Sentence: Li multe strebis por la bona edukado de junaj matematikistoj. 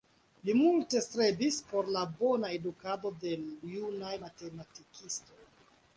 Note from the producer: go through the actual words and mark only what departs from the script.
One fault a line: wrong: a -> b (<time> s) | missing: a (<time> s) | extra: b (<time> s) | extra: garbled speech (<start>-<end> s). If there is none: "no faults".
no faults